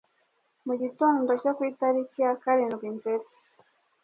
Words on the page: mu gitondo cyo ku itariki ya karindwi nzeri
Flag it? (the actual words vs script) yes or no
no